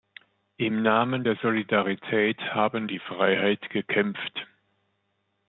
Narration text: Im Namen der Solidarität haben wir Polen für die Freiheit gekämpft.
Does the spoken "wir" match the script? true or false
false